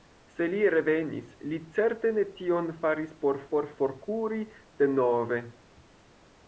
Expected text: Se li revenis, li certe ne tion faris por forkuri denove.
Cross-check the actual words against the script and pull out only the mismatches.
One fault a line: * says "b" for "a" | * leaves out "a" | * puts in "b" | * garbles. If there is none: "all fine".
* puts in "por"